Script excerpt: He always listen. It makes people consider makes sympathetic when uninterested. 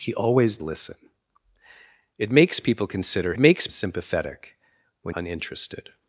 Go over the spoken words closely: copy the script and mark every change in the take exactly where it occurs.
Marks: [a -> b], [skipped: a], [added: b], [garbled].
He always listen. It makes people consider makes sympathetic when uninterested.